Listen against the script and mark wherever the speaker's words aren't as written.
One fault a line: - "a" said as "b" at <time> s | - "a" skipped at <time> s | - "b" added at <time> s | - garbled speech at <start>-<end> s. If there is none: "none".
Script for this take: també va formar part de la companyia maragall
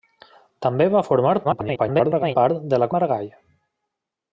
- garbled speech at 1.4-2.4 s
- "companyia" skipped at 2.9 s